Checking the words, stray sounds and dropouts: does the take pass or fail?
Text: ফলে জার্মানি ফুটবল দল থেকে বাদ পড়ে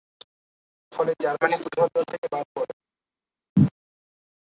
pass